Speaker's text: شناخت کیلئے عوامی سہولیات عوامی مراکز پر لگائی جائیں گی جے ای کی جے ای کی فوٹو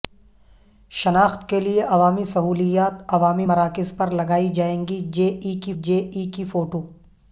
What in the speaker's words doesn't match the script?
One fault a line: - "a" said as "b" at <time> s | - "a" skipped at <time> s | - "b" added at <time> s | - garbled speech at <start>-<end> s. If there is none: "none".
none